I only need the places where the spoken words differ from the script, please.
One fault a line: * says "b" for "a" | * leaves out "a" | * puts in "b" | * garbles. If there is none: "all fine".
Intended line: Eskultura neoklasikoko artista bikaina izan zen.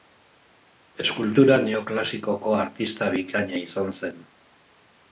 all fine